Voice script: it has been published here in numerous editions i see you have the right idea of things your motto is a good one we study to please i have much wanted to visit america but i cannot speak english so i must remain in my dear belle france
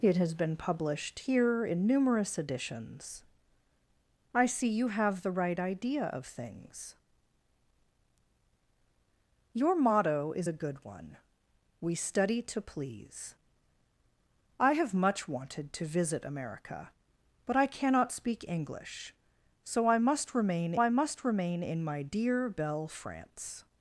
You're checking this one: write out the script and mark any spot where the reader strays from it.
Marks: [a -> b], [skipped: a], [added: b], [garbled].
it has been published here in numerous editions i see you have the right idea of things your motto is a good one we study to please i have much wanted to visit america but i cannot speak english so i must remain [added: i must remain] in my dear belle france